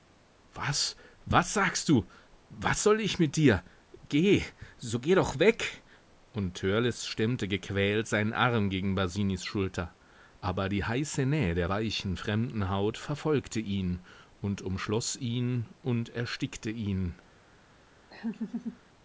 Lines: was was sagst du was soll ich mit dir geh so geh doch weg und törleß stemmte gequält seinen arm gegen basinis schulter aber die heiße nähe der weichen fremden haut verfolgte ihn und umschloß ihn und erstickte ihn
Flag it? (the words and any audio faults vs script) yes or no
yes